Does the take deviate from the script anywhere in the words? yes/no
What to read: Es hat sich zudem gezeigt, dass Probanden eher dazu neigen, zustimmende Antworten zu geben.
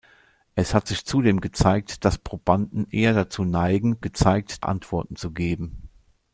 yes